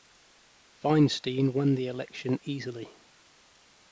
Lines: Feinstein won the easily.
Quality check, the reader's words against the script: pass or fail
fail